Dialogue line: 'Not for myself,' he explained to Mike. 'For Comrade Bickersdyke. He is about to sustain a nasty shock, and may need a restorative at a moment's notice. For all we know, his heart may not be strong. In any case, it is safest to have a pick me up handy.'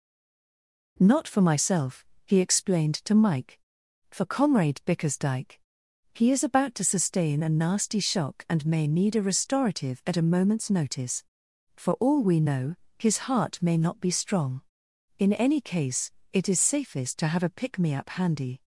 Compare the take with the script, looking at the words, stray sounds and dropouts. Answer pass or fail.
pass